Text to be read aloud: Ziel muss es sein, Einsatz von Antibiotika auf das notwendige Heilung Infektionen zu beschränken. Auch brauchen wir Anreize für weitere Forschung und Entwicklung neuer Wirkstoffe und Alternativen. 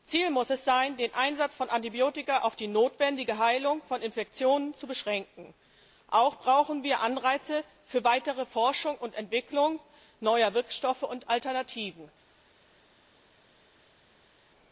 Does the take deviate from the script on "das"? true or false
true